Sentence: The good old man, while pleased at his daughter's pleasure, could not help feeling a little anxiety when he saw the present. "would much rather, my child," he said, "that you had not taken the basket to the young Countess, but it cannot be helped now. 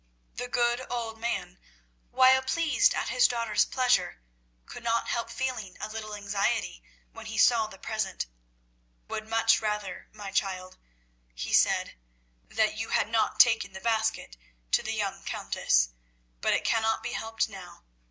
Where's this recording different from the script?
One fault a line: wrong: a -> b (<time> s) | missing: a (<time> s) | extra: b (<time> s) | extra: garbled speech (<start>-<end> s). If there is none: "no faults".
no faults